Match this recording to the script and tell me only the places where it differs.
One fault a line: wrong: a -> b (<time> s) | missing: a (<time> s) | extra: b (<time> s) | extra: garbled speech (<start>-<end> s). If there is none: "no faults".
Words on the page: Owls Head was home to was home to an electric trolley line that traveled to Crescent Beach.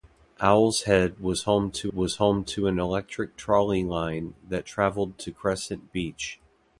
no faults